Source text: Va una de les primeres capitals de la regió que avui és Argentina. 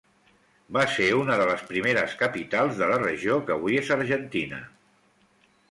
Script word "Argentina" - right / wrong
right